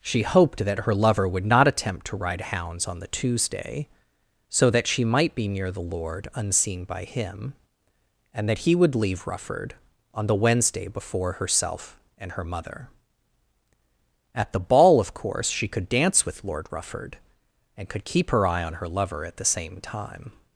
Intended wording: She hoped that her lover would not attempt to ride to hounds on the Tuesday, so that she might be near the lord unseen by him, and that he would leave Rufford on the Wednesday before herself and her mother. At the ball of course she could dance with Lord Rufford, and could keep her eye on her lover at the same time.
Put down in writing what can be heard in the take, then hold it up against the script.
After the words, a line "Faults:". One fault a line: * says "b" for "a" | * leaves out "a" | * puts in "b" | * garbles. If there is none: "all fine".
She hoped that her lover would not attempt to ride hounds on the Tuesday, so that she might be near the lord unseen by him, and that he would leave Rufford on the Wednesday before herself and her mother. At the ball of course she could dance with Lord Rufford, and could keep her eye on her lover at the same time.
Faults:
* leaves out "to"